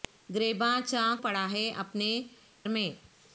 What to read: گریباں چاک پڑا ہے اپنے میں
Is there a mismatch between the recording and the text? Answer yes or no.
no